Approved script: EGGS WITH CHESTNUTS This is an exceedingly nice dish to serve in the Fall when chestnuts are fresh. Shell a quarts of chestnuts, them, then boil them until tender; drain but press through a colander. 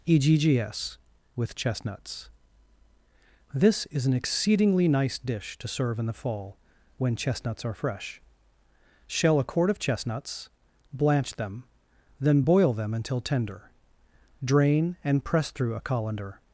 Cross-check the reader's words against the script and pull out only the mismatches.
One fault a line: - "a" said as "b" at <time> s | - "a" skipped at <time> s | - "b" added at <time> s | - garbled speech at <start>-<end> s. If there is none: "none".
- "quarts" said as "quart" at 9.4 s
- "blanch" added at 10.9 s
- "but" said as "and" at 15.0 s